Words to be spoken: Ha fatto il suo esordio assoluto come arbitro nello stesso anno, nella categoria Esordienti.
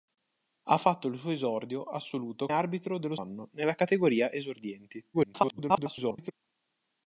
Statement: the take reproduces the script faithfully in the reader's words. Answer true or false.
false